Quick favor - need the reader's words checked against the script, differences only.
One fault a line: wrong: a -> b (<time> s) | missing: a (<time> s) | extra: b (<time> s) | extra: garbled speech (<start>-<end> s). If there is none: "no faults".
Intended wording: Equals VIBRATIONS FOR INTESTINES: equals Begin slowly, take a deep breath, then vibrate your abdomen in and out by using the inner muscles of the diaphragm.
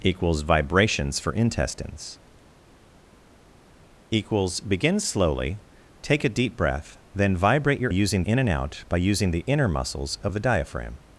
wrong: abdomen -> using (7.9 s)